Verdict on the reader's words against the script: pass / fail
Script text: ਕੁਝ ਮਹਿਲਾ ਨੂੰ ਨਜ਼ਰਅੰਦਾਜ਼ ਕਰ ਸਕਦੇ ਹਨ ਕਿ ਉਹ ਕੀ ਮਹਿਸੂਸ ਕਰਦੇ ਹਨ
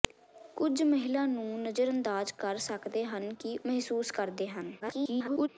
fail